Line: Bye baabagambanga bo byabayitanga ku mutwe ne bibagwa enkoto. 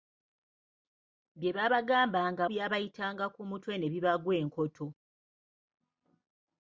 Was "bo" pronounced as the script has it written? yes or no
no